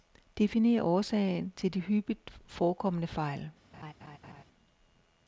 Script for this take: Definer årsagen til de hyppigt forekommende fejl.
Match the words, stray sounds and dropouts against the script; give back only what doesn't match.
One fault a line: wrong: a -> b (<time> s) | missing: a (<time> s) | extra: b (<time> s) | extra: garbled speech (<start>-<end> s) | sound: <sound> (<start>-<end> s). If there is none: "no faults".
sound: laugh (3.7-4.4 s)